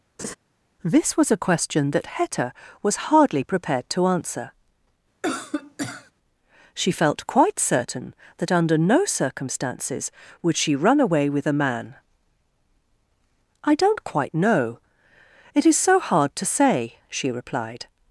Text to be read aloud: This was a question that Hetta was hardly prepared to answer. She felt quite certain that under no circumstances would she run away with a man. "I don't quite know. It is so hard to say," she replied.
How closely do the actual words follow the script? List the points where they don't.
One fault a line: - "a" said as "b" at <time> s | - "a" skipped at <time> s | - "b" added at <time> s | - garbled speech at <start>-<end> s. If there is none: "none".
none